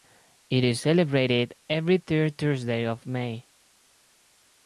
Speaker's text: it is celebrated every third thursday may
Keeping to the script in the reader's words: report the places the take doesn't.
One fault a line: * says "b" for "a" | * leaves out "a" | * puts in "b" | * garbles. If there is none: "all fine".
* puts in "of"